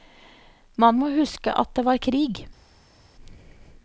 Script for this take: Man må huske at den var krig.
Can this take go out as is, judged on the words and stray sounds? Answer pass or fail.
fail